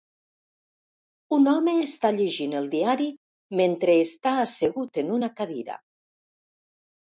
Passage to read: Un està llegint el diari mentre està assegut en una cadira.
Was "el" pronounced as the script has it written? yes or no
yes